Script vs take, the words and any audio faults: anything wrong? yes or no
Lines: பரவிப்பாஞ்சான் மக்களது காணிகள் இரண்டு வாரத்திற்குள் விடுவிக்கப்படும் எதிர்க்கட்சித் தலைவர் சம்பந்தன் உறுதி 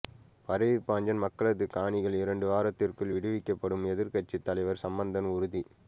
no